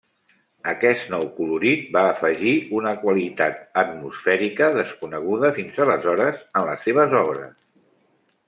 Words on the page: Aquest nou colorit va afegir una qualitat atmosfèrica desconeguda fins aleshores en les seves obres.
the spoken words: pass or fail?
pass